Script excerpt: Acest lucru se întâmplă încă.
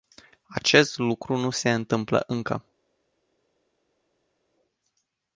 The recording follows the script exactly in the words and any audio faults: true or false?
false